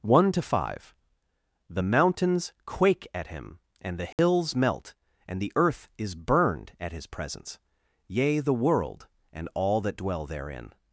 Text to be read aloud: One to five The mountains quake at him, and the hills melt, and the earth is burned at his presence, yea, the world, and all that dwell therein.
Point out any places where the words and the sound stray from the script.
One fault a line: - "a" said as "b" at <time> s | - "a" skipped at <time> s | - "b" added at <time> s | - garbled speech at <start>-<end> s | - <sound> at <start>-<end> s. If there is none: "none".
- dropout at 4.1-4.2 s